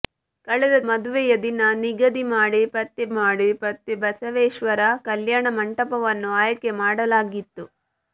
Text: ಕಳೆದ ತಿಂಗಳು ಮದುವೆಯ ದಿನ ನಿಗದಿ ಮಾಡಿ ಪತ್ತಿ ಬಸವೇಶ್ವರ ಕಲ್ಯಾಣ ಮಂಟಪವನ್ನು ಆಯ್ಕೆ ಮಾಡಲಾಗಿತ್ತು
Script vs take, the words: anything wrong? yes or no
yes